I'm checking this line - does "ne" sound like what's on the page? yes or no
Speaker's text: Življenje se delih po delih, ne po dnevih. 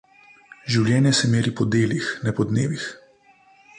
yes